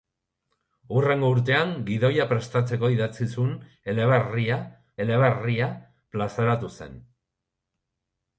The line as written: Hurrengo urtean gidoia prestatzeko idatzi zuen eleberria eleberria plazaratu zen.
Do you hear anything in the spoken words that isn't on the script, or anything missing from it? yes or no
no